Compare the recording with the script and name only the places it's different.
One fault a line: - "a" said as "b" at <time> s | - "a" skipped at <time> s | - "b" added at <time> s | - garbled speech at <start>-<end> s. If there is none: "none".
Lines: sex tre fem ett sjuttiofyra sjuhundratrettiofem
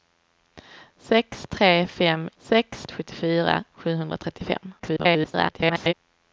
- "ett" said as "sex" at 2.4 s
- garbled speech at 4.8-5.9 s